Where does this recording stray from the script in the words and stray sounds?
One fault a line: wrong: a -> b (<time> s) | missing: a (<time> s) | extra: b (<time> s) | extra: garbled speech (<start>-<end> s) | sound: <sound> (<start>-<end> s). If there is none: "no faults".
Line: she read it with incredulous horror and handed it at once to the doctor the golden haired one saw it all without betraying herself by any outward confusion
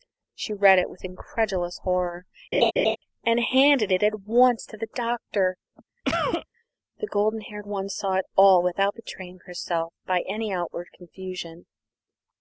sound: laugh (2.5-3.0 s)
sound: cough (6.0-6.5 s)